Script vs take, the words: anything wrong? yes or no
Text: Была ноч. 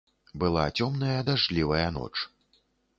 yes